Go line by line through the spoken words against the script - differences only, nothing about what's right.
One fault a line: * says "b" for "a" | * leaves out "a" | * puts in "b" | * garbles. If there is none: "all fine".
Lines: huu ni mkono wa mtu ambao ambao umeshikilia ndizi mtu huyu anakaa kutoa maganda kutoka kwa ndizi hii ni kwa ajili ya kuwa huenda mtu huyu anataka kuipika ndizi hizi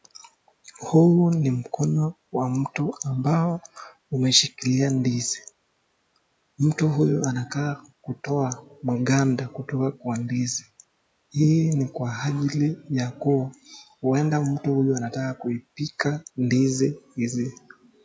* leaves out "ambao"